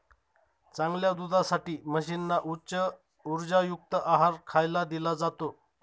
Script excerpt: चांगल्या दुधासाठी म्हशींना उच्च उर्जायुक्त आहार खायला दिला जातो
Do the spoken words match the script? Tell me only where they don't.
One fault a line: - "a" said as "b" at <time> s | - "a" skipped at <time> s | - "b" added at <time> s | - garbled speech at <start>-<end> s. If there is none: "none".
none